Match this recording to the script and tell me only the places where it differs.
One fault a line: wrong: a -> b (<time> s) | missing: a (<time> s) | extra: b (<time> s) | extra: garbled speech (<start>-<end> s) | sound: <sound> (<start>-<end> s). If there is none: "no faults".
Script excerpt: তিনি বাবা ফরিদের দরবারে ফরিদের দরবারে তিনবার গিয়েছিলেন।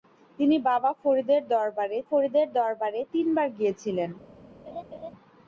sound: laugh (4.7-5.1 s)